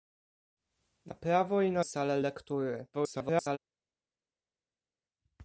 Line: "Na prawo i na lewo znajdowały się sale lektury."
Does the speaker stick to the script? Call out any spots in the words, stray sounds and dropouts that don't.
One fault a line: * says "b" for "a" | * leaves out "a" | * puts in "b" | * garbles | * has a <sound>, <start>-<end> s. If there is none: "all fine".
* leaves out "lewo znajdowały się"
* garbles